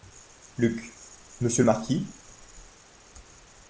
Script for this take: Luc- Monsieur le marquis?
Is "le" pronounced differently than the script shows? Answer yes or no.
no